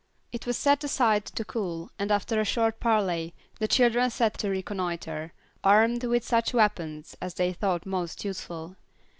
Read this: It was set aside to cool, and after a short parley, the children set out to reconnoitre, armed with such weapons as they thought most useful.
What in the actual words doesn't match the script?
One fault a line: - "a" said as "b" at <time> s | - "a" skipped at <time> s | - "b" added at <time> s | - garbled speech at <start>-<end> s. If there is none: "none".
- "out" skipped at 4.4 s